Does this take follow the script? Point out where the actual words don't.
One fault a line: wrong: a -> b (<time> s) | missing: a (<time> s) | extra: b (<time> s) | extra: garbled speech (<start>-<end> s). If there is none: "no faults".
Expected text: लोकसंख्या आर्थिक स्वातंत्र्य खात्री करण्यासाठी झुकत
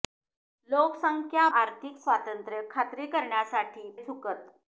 no faults